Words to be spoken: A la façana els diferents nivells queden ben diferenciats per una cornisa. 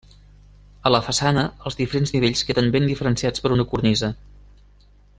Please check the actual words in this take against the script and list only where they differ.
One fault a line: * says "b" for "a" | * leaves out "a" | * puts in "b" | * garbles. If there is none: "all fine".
all fine